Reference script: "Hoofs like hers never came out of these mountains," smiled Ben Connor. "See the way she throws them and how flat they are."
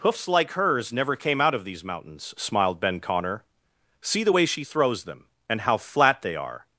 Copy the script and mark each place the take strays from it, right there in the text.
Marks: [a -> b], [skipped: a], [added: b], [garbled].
"Hoofs like hers never came out of these mountains," smiled Ben Connor. "See the way she throws them and how flat they are."